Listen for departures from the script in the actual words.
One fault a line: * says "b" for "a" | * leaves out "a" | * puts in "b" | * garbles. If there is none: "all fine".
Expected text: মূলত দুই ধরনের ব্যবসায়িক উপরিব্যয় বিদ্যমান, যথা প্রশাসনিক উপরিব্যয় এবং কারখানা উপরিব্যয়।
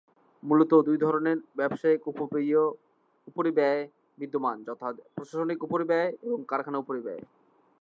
all fine